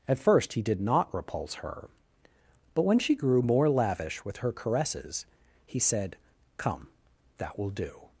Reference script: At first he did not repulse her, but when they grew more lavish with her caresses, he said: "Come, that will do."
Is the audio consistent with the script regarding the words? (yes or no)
no